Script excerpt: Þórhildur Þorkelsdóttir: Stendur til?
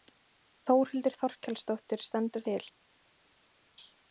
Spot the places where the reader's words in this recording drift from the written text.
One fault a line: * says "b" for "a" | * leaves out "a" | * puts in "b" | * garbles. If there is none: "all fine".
all fine